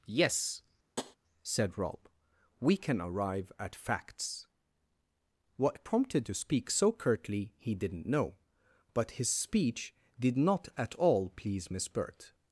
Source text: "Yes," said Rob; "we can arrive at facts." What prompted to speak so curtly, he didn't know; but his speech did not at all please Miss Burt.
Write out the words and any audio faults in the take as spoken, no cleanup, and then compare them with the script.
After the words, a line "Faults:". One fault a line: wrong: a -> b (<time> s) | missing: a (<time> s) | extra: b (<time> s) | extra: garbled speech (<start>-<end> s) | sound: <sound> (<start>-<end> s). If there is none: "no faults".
"Yes," said Rob; "we can arrive at facts." What prompted to speak so curtly, he didn't know; but his speech did not at all please Miss Burt.
Faults:
sound: tap (1.0-1.2 s)